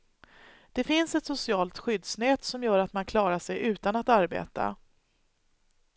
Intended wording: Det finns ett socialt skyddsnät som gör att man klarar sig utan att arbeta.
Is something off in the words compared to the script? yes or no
no